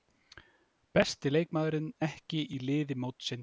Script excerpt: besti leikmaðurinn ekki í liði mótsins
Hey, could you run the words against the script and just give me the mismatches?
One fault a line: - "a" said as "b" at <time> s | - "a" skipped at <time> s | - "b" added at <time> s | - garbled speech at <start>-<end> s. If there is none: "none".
none